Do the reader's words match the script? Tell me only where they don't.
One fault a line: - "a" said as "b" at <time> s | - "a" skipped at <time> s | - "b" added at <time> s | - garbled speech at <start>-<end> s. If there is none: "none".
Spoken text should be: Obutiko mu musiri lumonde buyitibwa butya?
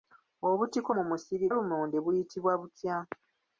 none